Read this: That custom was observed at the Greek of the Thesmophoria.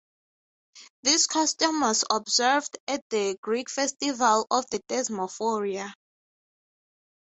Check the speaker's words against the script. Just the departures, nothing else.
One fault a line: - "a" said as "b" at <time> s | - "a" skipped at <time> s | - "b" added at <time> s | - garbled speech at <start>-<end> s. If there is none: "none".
- "That" said as "This" at 1.0 s
- "festival" added at 3.7 s